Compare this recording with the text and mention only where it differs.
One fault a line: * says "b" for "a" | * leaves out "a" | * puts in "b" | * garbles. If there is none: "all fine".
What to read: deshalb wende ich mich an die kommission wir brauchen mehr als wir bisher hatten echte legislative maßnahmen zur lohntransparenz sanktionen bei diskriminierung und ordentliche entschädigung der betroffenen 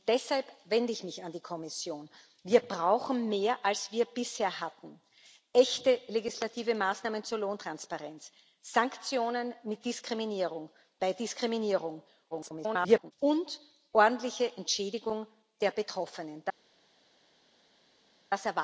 * garbles